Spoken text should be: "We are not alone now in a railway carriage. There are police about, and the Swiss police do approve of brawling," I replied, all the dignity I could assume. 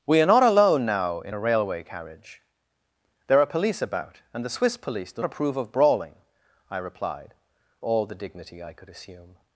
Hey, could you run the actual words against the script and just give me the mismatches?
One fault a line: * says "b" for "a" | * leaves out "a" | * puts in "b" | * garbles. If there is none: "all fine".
all fine